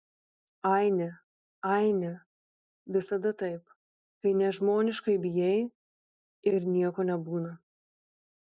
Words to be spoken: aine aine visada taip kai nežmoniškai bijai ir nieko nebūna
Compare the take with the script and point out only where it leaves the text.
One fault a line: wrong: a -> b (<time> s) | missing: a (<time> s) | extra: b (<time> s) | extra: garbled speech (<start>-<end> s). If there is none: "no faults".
no faults